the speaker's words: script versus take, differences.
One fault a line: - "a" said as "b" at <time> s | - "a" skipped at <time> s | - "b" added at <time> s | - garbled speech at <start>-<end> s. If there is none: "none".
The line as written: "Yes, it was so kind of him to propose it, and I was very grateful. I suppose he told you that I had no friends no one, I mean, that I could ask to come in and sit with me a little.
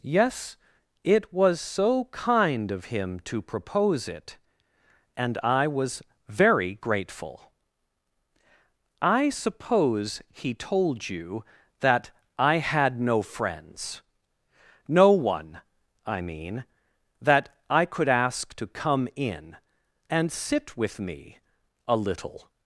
none